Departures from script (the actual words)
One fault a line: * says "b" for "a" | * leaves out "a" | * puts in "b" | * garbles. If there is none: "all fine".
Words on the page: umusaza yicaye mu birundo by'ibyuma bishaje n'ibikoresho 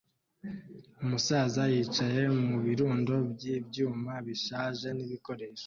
all fine